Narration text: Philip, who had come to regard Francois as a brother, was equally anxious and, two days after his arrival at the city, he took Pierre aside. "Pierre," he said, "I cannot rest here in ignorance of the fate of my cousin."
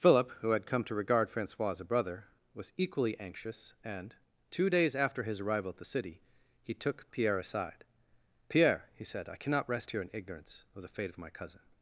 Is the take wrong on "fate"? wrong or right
right